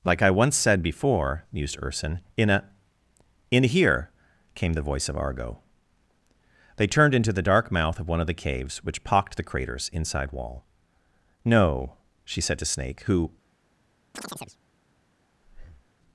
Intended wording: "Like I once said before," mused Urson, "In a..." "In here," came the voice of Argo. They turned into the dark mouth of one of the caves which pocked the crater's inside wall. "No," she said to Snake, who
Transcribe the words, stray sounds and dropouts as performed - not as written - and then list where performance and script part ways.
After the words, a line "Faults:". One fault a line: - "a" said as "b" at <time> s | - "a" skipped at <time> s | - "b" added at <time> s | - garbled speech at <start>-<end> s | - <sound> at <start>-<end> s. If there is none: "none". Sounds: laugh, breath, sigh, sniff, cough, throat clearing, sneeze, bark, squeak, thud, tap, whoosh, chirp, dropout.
"Like I once said before," mused Urson, "In a..." "In here," came the voice of Argo. They turned into the dark mouth of one of the caves which pocked the crater's inside wall. "No," she said to Snake, who
Faults:
- chirp at 14.1-14.6 s
- breath at 15.4-15.9 s